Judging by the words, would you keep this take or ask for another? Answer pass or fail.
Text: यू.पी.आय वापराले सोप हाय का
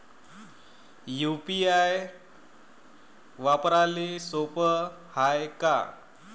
pass